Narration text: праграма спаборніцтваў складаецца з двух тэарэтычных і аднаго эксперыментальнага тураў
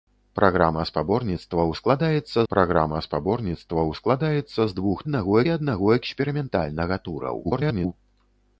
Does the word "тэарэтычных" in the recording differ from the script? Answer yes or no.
yes